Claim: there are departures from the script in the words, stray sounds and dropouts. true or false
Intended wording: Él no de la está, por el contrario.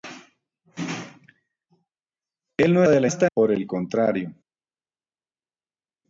false